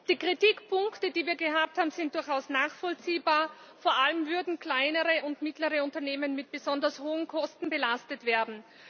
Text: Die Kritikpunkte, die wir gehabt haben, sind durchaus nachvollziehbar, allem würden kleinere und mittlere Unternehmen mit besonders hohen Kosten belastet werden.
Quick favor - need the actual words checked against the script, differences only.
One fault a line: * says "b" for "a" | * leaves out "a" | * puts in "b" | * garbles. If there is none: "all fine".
* puts in "vor"